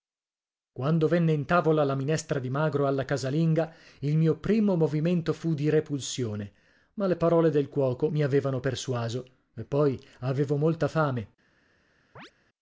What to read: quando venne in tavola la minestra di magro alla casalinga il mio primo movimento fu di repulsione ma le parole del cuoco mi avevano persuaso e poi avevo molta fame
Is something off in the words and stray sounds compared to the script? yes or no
yes